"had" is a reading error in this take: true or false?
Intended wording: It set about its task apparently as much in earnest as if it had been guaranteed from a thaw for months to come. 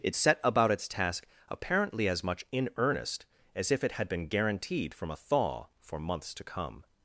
false